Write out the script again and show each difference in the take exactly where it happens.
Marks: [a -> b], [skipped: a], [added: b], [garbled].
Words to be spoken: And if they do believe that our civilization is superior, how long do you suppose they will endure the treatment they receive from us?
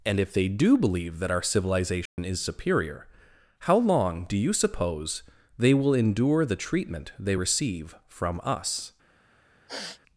And if they do believe that our civilization is superior, how long do you suppose they will endure the treatment they receive from us?